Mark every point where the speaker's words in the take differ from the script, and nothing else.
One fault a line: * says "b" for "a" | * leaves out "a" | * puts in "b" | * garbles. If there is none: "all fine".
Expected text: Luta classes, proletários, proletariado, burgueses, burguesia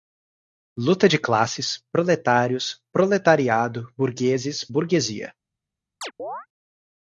* puts in "de"